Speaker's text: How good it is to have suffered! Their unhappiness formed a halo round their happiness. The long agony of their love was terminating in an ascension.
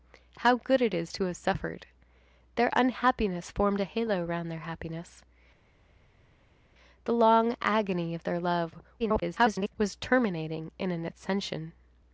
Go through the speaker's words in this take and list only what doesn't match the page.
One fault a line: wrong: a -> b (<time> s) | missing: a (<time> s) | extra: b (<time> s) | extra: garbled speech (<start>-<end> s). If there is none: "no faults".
extra: garbled speech (9.0-9.8 s)